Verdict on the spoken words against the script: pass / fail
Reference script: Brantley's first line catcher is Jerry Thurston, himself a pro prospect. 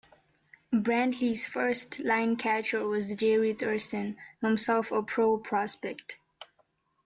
fail